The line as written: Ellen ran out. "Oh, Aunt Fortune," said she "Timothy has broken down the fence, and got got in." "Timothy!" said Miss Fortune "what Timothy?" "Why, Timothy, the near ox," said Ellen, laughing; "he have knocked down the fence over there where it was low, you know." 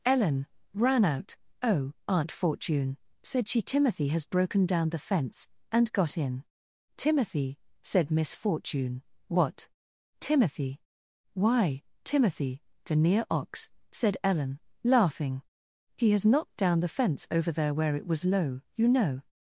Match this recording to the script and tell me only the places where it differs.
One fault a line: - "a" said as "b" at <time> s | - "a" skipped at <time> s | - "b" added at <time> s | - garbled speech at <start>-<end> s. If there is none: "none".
- "got" skipped at 6.2 s
- "have" said as "has" at 16.1 s